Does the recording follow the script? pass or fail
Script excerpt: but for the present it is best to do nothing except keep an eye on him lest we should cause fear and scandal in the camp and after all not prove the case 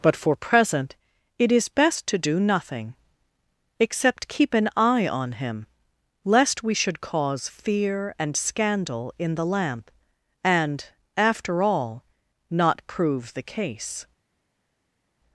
fail